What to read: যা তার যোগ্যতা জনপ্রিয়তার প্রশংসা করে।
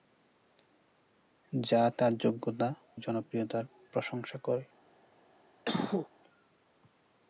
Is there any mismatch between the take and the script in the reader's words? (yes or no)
no